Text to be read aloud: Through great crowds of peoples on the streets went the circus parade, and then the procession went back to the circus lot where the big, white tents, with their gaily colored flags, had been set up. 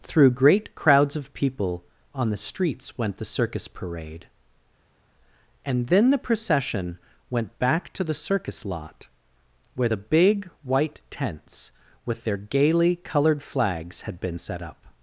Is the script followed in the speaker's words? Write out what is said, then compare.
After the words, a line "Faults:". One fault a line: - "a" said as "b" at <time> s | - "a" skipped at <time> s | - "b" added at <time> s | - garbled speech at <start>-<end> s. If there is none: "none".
Through great crowds of people on the streets went the circus parade, and then the procession went back to the circus lot where the big, white tents, with their gaily colored flags, had been set up.
Faults:
- "peoples" said as "people" at 1.3 s